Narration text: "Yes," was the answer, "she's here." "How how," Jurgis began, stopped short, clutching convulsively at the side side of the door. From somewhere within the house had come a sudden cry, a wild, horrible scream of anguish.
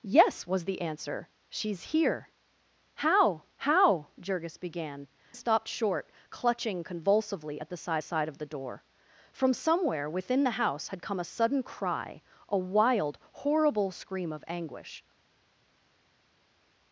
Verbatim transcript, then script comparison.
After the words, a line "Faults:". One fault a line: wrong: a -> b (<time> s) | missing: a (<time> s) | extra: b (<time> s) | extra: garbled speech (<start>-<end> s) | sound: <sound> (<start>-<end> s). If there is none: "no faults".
"Yes," was the answer, "she's here." "How how," Jurgis began, stopped short, clutching convulsively at the side side of the door. From somewhere within the house had come a sudden cry, a wild, horrible scream of anguish.
Faults:
no faults